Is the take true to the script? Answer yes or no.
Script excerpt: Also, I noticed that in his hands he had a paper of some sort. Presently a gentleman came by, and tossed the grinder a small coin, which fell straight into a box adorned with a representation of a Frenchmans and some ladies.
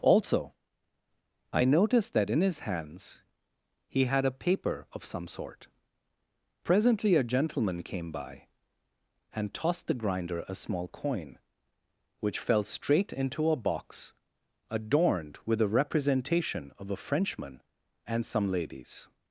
no